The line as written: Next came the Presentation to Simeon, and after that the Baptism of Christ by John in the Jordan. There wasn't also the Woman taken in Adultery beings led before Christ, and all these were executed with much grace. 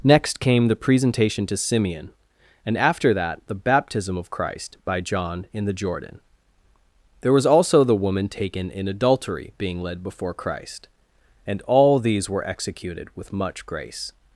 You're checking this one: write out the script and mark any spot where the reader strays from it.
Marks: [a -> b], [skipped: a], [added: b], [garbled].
Next came the Presentation to Simeon, and after that the Baptism of Christ by John in the Jordan. There [wasn't -> was] also the Woman taken in Adultery [beings -> being] led before Christ, and all these were executed with much grace.